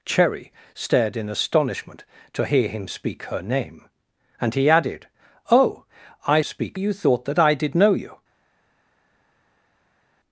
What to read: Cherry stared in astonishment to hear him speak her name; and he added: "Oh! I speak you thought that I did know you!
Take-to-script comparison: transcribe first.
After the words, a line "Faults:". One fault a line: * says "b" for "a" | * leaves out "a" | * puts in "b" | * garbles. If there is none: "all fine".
Cherry stared in astonishment to hear him speak her name; and he added: "Oh! I speak you thought that I did know you!
Faults:
all fine